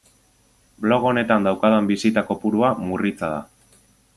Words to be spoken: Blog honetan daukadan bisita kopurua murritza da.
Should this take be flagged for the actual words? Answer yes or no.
no